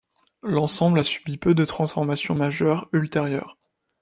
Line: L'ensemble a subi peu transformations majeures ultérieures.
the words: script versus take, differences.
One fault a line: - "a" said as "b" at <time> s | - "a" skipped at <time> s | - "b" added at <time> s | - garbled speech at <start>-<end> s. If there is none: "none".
- "de" added at 1.5 s